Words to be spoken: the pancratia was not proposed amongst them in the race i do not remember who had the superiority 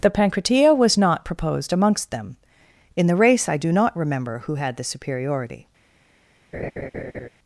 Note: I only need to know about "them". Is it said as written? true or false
true